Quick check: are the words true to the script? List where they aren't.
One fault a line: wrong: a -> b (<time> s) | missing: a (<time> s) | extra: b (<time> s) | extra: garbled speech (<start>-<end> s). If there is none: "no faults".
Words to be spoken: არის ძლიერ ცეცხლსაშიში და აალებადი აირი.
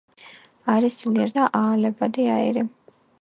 missing: ცეცხლსაშიში (1.4 s)